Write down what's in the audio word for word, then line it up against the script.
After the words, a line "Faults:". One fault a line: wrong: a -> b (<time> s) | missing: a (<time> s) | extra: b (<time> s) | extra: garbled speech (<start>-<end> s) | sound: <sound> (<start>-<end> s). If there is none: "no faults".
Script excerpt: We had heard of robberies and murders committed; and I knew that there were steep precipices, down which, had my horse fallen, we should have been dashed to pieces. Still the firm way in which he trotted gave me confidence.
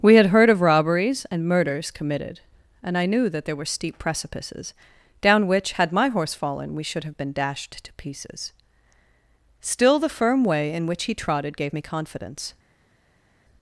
We had heard of robberies and murders committed; and I knew that there were steep precipices, down which, had my horse fallen, we should have been dashed to pieces. Still the firm way in which he trotted gave me confidence.
Faults:
no faults